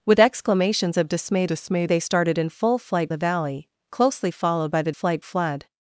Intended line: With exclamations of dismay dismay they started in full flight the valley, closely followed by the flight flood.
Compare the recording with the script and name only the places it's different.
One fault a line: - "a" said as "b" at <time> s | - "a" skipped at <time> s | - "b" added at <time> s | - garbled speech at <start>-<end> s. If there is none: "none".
none